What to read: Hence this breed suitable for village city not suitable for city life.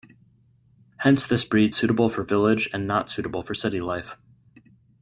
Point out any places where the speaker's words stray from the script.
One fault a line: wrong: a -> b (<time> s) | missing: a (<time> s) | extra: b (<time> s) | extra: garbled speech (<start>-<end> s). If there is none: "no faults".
wrong: city -> and (2.7 s)